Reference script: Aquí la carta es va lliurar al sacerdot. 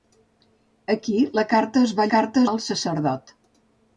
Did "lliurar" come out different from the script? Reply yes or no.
yes